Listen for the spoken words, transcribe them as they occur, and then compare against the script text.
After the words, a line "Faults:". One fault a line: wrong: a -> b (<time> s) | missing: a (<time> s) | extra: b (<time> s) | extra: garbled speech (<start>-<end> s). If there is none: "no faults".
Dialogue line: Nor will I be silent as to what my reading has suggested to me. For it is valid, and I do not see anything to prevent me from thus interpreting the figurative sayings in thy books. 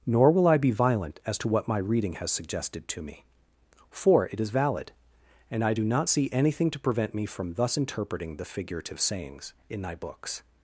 Nor will I be violent as to what my reading has suggested to me. For it is valid, and I do not see anything to prevent me from thus interpreting the figurative sayings in thy books.
Faults:
wrong: silent -> violent (0.7 s)